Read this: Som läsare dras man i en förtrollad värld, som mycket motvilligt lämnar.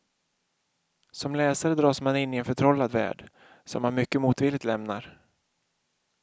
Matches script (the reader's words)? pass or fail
fail